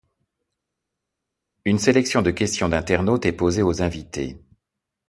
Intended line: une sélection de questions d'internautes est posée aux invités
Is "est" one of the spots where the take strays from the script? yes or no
no